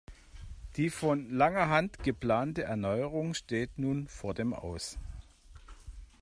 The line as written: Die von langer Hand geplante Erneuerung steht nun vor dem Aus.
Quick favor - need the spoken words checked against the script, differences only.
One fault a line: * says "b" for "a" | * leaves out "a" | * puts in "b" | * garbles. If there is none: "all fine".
all fine